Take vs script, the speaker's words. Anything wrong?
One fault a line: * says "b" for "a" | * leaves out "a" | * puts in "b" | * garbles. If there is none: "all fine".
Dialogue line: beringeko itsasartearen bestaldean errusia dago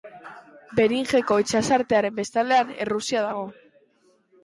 all fine